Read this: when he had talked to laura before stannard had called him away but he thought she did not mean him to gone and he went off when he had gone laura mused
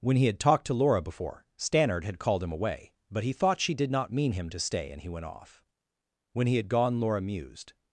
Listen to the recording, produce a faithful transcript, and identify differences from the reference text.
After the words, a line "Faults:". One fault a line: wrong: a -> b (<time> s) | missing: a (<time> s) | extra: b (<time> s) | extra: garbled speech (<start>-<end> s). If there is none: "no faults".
when he had talked to laura before stannard had called him away but he thought she did not mean him to stay and he went off when he had gone laura mused
Faults:
wrong: gone -> stay (4.6 s)